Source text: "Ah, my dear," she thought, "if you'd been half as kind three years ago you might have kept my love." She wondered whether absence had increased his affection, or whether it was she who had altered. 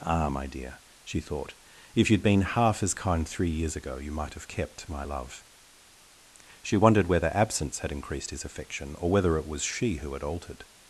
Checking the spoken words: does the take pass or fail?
pass